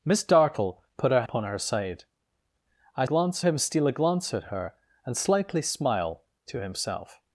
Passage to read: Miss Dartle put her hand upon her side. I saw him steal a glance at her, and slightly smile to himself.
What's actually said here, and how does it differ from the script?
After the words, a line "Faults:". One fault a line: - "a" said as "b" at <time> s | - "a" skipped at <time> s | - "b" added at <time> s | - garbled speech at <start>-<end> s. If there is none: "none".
Miss Dartle put her upon her side. I glance him steal a glance at her, and slightly smile to himself.
Faults:
- "hand" skipped at 1.2 s
- "saw" said as "glance" at 3.0 s